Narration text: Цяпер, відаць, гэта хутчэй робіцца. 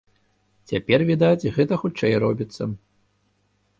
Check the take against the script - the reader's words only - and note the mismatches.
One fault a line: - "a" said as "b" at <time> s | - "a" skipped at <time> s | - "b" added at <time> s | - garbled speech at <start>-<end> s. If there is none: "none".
none